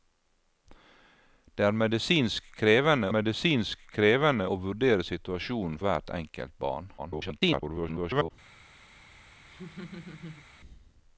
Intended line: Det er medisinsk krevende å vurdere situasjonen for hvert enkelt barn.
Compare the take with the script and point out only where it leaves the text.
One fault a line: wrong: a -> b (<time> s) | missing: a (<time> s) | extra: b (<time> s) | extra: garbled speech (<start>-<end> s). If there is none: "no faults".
extra: medisinsk krevende (3.1 s)
missing: for (5.8 s)
extra: garbled speech (7.0-8.3 s)